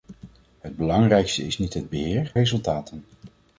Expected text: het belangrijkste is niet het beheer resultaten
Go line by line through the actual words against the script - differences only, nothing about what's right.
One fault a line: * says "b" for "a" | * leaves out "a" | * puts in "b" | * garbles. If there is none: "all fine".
all fine